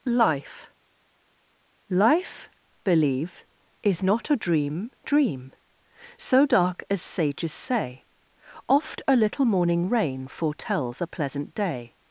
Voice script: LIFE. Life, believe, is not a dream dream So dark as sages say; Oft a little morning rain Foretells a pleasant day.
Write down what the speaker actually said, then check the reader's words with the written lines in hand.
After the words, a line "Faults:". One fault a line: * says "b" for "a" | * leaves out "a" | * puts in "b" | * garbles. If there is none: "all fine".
LIFE. Life, believe, is not a dream dream So dark as sages say; Oft a little morning rain Foretells a pleasant day.
Faults:
all fine